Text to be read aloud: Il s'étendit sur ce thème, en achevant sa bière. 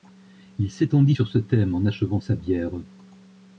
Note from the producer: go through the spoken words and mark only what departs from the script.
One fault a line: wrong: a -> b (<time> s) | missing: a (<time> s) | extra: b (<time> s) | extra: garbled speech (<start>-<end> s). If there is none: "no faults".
no faults